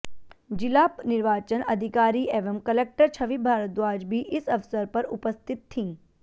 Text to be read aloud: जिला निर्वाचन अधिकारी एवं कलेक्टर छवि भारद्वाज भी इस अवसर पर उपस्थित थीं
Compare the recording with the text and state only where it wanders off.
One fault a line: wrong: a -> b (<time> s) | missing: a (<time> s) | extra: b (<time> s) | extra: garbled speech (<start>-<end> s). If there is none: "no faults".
no faults